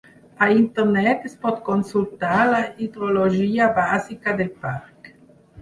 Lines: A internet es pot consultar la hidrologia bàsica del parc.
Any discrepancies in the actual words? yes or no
no